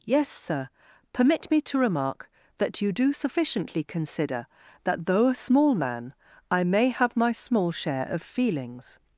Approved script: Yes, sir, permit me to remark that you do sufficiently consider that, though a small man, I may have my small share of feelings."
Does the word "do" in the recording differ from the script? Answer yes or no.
no